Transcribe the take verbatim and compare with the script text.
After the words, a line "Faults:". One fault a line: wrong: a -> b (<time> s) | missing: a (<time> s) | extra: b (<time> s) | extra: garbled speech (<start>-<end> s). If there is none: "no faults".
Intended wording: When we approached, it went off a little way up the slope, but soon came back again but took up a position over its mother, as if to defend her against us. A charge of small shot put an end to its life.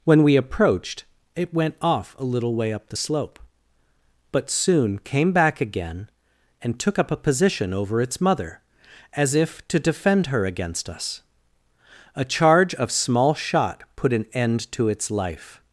When we approached, it went off a little way up the slope, but soon came back again and took up a position over its mother, as if to defend her against us. A charge of small shot put an end to its life.
Faults:
wrong: but -> and (6.6 s)